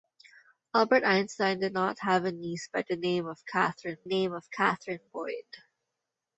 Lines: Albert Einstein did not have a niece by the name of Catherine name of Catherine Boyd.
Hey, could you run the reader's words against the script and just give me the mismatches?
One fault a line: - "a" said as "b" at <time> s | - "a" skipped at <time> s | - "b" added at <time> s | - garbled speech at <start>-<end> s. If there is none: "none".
none